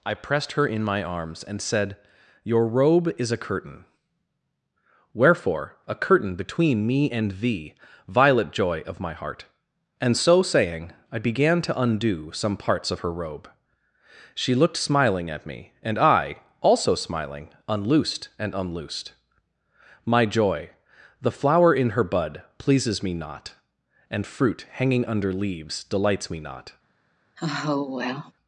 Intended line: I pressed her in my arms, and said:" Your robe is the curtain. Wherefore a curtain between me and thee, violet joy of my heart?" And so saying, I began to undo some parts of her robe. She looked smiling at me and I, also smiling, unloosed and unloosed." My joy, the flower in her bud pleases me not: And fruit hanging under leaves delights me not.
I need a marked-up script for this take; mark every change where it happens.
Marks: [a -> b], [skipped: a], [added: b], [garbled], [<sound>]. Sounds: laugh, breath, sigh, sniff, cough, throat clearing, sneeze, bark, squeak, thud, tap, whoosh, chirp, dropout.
I pressed her in my arms, and said:" Your robe is [the -> a] curtain. Wherefore a curtain between me and thee, violet joy of my heart?" And so saying, I began to undo some parts of her robe. She looked smiling at me and I, also smiling, unloosed and unloosed." My joy, the flower in her bud pleases me not: And fruit hanging under leaves delights me not. [sigh]